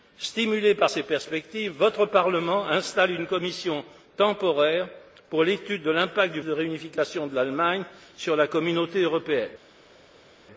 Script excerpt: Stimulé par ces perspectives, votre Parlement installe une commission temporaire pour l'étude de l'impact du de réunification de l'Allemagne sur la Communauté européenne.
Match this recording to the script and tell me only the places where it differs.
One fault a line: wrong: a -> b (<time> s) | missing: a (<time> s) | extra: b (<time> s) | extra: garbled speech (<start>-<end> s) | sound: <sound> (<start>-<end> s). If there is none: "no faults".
no faults